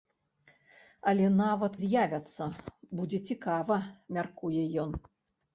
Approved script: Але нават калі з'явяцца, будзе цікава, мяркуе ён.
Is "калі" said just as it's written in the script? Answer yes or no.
no